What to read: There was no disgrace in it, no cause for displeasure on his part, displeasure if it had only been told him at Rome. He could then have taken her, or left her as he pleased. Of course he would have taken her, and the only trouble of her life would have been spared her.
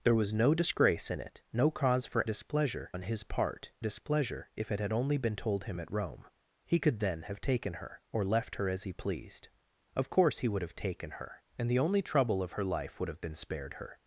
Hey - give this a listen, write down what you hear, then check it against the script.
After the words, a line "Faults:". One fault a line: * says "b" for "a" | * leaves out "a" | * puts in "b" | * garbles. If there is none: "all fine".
There was no disgrace in it, no cause for displeasure on his part, displeasure if it had only been told him at Rome. He could then have taken her, or left her as he pleased. Of course he would have taken her, and the only trouble of her life would have been spared her.
Faults:
all fine